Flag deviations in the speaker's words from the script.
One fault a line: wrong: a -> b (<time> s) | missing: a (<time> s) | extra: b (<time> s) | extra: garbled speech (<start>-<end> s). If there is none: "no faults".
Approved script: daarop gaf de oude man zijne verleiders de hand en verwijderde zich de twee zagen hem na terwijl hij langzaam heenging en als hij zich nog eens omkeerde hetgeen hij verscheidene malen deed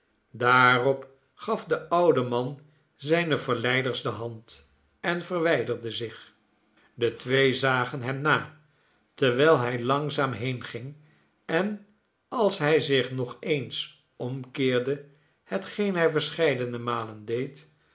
no faults